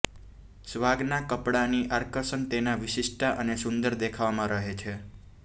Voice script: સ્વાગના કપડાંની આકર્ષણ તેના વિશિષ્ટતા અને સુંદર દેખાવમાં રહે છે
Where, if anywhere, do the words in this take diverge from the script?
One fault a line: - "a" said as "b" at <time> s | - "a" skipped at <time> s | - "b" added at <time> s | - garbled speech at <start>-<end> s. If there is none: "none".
none